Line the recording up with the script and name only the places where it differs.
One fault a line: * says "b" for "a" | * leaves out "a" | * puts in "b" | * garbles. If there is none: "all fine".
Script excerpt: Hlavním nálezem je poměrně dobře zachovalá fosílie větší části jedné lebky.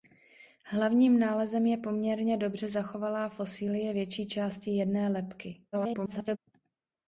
* garbles